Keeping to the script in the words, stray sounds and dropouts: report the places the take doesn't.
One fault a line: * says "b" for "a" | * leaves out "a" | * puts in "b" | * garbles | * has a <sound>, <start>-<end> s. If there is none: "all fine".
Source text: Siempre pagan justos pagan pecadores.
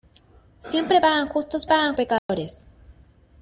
* has a dropout, 2.2-2.3 s